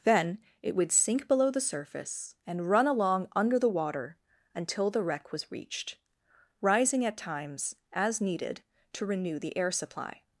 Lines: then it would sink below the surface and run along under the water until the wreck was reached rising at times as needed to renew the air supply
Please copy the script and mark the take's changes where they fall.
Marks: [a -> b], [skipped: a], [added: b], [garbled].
then it would sink below the surface and run along under the water until the wreck was reached rising at times as needed to renew the air supply